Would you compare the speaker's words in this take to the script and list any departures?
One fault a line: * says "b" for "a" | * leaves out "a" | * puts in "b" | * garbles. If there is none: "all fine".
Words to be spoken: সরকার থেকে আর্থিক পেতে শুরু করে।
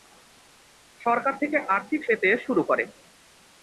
all fine